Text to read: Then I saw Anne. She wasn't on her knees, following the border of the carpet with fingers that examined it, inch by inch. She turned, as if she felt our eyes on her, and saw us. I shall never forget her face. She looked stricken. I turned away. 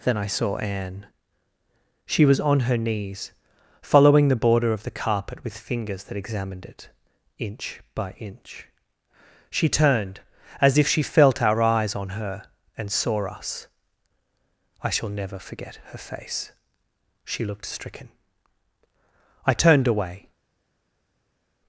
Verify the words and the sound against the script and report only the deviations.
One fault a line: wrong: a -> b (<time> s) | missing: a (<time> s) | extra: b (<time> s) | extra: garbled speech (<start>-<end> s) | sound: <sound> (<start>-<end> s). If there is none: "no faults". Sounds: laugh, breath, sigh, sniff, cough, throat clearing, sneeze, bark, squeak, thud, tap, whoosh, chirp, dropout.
wrong: wasn't -> was (2.2 s)